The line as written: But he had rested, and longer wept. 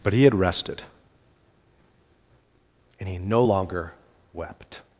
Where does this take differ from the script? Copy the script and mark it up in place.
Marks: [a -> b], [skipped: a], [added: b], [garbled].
But he had rested, and [added: he no] longer wept.